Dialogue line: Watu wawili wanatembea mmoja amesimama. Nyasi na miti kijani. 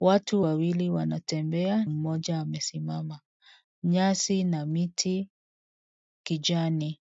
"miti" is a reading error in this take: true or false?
false